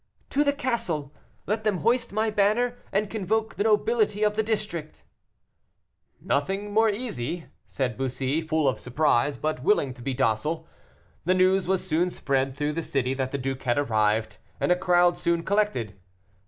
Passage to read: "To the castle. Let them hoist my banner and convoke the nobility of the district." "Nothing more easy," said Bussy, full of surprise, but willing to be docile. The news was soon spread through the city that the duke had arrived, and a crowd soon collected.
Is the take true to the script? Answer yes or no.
yes